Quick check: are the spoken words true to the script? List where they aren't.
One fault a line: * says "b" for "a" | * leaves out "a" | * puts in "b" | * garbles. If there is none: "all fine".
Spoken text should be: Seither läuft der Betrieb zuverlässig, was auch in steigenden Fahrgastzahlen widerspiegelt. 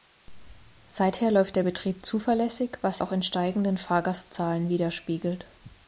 all fine